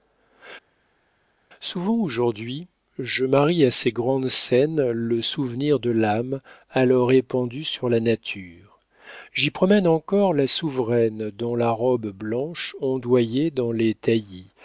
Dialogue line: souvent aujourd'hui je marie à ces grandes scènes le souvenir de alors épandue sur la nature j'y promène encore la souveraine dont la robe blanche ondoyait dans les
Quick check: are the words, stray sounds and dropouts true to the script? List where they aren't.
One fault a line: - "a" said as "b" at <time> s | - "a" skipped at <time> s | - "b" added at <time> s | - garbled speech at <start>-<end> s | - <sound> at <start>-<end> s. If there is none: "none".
- "l'âme" added at 5.9 s